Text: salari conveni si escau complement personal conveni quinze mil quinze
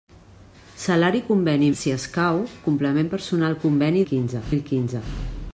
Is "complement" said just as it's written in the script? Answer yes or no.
yes